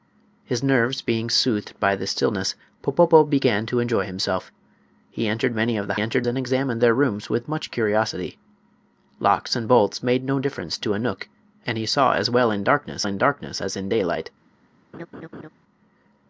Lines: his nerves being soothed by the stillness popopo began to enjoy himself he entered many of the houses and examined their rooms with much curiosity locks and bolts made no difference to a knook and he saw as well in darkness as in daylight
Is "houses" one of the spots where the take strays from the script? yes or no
yes